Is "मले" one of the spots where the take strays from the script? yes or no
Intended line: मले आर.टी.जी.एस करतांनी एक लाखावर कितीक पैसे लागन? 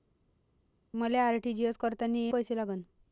no